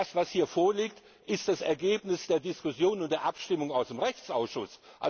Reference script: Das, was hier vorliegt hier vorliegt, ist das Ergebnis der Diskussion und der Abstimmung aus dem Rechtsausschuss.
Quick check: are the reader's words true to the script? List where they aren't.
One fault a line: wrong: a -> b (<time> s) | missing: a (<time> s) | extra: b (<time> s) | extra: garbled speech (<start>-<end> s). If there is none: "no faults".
missing: hier vorliegt (1.0 s)